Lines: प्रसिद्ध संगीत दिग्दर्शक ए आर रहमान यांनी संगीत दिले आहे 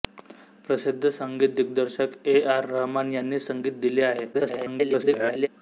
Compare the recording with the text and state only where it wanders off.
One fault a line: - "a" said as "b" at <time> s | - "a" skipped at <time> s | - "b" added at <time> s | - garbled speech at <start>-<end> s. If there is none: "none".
- garbled speech at 4.3-5.5 s